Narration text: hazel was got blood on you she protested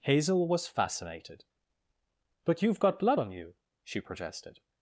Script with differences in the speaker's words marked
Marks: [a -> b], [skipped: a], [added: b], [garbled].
hazel was [added: fascinated but you've] got blood on you she protested